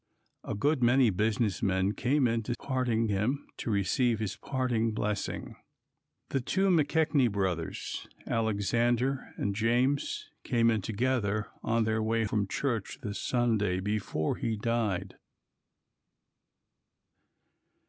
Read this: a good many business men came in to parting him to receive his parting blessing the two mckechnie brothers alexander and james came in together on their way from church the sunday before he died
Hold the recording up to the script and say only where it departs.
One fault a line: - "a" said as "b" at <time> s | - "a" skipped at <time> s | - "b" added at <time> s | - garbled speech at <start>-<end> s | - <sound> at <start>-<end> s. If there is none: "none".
none